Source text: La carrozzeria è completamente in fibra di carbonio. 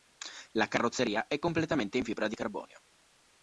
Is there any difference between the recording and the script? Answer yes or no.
no